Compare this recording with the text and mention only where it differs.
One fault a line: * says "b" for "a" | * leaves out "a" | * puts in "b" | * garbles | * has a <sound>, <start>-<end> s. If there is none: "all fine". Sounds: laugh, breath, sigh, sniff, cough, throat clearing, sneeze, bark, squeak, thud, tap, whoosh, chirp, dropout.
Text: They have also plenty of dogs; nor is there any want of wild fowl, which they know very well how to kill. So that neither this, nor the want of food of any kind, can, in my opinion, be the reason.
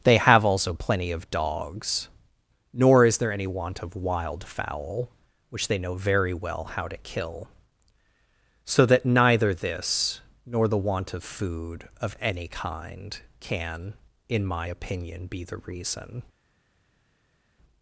all fine